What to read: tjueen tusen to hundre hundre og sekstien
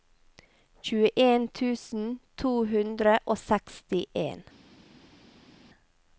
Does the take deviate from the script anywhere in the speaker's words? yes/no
yes